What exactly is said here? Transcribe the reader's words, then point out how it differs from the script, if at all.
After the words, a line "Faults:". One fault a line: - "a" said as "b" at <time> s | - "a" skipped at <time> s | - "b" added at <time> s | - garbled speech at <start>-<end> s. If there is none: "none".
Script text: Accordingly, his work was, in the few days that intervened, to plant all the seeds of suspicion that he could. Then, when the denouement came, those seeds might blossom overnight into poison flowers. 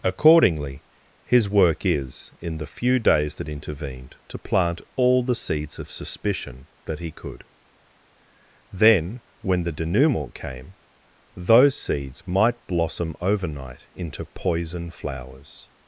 Accordingly, his work is, in the few days that intervened, to plant all the seeds of suspicion that he could. Then, when the denouement came, those seeds might blossom overnight into poison flowers.
Faults:
- "was" said as "is" at 1.9 s